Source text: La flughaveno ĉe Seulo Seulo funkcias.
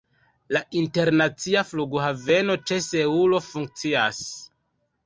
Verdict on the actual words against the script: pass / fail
fail